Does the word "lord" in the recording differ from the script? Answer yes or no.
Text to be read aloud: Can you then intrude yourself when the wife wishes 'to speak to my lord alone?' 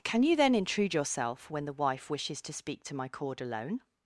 yes